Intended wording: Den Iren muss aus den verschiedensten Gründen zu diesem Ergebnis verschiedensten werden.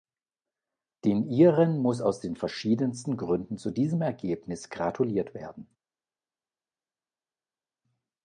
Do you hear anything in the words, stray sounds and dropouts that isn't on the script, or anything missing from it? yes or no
yes